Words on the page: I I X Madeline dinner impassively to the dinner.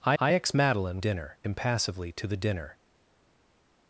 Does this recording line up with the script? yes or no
yes